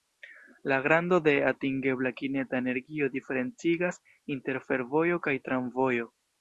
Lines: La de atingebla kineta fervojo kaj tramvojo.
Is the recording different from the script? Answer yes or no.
yes